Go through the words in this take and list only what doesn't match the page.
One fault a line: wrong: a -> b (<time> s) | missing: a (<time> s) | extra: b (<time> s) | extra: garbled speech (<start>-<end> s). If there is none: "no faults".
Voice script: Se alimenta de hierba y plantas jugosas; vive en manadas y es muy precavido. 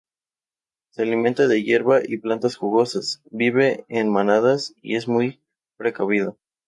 no faults